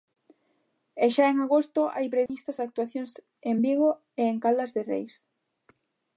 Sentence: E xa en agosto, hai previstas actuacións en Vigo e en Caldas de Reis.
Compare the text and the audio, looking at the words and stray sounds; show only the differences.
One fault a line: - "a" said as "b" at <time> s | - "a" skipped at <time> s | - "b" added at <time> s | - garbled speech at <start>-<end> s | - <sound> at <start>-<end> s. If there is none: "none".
- dropout at 2.3-2.3 s